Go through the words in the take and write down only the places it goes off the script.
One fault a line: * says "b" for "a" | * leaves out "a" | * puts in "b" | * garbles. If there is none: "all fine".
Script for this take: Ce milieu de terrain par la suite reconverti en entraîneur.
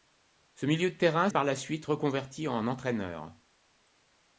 all fine